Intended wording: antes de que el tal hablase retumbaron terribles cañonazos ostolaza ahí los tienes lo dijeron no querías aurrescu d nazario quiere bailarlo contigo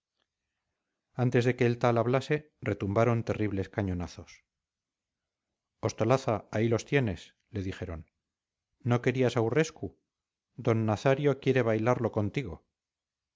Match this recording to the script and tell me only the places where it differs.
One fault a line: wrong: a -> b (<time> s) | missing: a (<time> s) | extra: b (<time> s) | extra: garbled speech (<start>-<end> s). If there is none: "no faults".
wrong: lo -> le (7.5 s)